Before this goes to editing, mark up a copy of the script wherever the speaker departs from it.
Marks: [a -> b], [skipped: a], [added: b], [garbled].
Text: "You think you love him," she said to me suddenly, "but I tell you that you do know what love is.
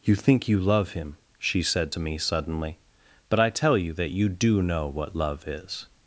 "You think you love him," she said to me suddenly, "but I tell you that you do know what love is.